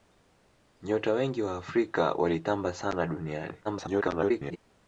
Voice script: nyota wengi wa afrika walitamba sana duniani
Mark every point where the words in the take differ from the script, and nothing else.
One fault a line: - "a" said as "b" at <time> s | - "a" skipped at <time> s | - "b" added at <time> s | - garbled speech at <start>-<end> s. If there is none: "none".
- garbled speech at 3.6-4.6 s